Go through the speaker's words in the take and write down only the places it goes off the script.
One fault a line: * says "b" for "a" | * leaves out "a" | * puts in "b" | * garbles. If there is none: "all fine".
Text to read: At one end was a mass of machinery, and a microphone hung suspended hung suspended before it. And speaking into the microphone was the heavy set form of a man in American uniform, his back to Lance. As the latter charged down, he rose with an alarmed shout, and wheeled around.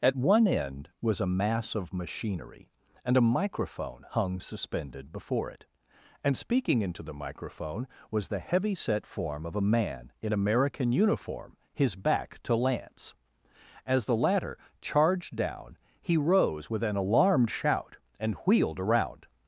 * leaves out "hung suspended"